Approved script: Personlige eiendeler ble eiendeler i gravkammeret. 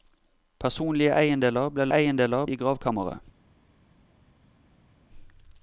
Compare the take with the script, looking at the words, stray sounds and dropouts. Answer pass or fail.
pass